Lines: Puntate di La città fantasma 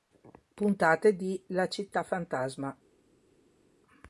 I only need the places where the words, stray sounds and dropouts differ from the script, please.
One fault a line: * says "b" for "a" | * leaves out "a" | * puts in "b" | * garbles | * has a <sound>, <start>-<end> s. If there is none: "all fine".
all fine